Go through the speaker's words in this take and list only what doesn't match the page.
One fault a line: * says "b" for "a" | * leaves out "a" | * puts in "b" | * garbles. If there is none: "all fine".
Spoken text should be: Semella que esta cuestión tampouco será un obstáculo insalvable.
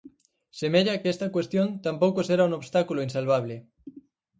all fine